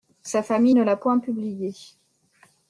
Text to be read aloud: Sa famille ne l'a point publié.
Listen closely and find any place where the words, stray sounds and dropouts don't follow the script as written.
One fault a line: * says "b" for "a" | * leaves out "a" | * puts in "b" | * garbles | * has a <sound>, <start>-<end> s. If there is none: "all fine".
all fine